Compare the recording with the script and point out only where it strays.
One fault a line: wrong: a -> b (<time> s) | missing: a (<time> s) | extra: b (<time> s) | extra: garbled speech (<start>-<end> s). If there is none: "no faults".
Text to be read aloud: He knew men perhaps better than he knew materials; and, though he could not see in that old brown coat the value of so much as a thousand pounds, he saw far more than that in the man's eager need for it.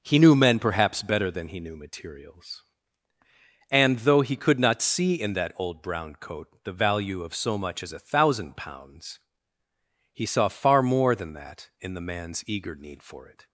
no faults